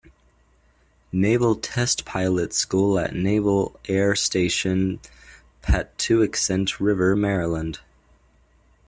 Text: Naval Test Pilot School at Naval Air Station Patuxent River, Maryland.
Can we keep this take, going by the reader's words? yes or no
yes